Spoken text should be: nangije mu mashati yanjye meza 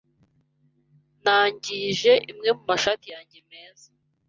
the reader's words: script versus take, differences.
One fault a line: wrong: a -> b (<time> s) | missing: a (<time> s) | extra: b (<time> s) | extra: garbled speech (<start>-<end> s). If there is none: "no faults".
extra: imwe (2.3 s)